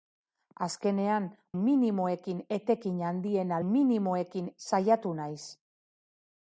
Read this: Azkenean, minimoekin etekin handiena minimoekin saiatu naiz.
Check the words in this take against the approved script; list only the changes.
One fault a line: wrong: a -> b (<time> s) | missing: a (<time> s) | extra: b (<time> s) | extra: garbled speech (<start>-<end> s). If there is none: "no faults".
no faults